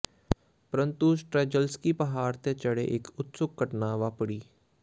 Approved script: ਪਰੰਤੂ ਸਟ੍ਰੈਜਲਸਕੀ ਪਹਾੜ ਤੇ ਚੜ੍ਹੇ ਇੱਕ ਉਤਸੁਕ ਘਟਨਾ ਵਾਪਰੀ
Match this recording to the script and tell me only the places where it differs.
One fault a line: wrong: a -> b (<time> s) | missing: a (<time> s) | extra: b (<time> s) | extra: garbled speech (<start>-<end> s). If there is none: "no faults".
no faults